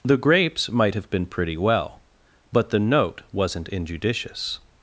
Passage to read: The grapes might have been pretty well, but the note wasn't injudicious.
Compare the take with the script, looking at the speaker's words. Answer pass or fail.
pass